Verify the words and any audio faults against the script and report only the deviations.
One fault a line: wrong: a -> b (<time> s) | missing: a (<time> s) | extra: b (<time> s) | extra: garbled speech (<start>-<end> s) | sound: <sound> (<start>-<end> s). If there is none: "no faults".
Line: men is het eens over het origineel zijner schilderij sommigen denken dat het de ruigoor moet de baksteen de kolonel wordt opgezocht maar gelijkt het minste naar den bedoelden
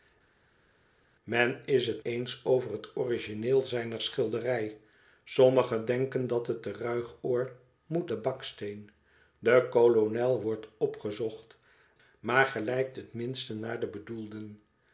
no faults